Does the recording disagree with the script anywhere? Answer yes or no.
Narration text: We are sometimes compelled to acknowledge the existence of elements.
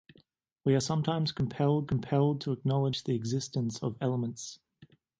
yes